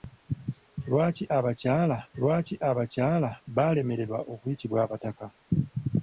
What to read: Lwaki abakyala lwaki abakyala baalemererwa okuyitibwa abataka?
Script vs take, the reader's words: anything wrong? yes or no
no